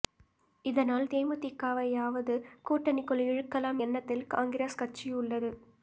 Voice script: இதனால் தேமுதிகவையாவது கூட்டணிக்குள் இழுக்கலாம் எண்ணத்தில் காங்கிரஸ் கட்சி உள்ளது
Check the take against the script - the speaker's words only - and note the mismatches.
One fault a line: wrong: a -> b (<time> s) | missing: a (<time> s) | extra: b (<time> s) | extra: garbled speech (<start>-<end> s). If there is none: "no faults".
no faults